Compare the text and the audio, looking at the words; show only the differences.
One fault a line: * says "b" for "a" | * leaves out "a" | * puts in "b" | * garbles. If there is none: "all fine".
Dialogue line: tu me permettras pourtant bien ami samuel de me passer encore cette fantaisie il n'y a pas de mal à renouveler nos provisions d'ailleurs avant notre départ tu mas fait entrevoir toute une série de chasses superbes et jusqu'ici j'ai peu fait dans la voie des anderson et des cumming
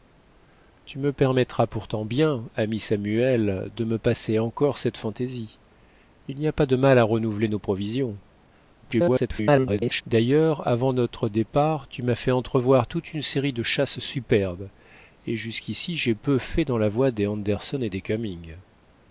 * garbles